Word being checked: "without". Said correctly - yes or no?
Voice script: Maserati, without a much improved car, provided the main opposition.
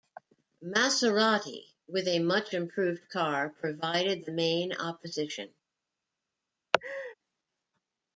no